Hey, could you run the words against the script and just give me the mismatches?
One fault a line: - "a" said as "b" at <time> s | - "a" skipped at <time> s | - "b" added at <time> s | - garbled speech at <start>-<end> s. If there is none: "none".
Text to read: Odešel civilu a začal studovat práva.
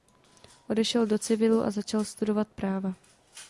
- "do" added at 1.1 s